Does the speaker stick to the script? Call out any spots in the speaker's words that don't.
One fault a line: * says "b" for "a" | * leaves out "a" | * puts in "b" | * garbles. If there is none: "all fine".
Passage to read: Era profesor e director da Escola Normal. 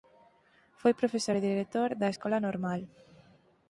* says "Foi" for "Era"